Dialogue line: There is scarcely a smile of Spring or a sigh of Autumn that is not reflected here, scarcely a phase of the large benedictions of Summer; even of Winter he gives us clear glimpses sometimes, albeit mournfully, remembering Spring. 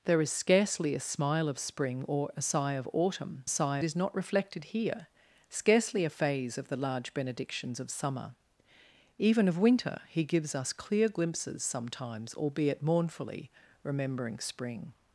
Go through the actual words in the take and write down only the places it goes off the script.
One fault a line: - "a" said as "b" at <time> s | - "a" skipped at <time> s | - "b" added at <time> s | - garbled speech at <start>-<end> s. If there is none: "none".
- "that" said as "sigh" at 3.5 s